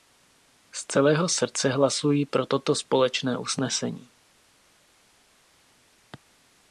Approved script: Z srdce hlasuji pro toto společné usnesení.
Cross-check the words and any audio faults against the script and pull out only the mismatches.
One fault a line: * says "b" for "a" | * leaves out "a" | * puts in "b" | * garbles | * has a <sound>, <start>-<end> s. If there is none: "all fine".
* puts in "celého"